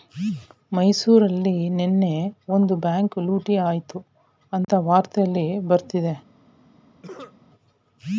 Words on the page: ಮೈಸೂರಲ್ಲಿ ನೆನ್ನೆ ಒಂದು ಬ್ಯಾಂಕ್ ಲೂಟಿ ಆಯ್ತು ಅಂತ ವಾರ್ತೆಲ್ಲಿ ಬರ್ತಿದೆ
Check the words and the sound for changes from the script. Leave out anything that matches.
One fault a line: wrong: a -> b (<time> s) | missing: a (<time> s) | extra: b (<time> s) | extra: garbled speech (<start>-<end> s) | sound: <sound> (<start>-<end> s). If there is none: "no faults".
sound: dropout (4.6-4.7 s)
sound: cough (7.0-7.4 s)